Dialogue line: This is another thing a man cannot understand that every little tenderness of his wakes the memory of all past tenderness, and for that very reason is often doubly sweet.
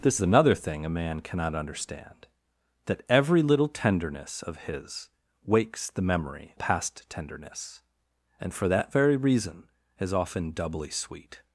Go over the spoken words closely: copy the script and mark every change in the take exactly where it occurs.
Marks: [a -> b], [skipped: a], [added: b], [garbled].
This [skipped: is] another thing a man cannot understand that every little tenderness of his wakes the memory [skipped: of all] past tenderness, and for that very reason is often doubly sweet.